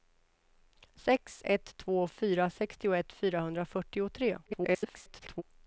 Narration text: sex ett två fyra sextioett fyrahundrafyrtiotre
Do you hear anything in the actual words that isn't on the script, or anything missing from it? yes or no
yes